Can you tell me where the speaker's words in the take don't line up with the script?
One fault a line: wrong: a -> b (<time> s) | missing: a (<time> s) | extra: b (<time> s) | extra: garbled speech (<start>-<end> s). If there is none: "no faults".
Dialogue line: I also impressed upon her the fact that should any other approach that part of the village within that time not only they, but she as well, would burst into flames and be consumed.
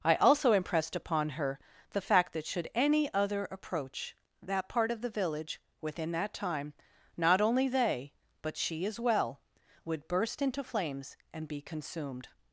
no faults